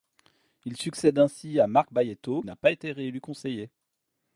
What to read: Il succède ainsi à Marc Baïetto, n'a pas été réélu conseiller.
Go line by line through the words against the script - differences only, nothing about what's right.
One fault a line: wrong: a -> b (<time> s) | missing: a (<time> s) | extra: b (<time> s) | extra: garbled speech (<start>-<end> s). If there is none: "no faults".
no faults